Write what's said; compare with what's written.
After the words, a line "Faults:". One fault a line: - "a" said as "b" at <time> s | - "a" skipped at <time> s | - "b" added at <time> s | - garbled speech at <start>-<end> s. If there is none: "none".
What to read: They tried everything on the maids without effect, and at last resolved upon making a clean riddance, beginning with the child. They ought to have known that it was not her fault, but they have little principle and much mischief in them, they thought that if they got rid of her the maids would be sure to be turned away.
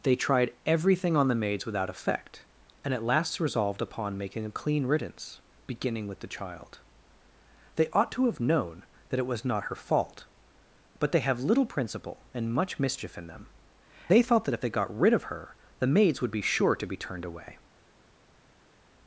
They tried everything on the maids without effect, and at last resolved upon making a clean riddance, beginning with the child. They ought to have known that it was not her fault, but they have little principle and much mischief in them, they thought that if they got rid of her the maids would be sure to be turned away.
Faults:
none